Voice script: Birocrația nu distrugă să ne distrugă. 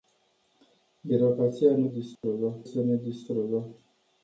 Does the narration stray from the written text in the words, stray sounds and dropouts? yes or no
yes